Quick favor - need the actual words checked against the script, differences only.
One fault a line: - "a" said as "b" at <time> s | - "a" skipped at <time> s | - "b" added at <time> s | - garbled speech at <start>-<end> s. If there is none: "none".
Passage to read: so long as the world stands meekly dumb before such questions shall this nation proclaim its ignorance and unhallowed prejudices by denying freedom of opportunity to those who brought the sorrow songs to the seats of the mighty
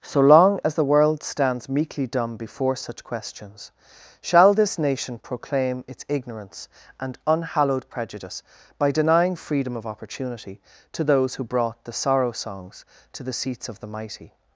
- "prejudices" said as "prejudice" at 7.9 s